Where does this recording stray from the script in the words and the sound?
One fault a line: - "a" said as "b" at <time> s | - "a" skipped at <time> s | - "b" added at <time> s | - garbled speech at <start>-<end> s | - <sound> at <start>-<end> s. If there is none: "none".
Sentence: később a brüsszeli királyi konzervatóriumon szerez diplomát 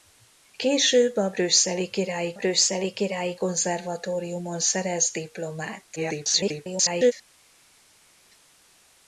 - "brüsszeli királyi" added at 2.3 s
- garbled speech at 6.0-7.1 s